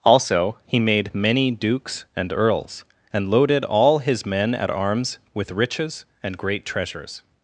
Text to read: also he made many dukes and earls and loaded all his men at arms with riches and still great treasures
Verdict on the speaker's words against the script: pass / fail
fail